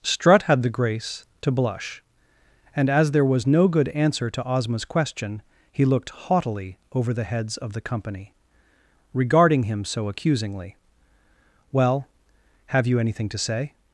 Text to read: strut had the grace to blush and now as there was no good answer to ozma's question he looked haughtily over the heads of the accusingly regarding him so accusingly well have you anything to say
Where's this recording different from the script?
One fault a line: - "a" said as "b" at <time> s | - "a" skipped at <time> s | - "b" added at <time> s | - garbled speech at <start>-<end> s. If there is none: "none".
- "now" skipped at 2.9 s
- "accusingly" said as "company" at 7.8 s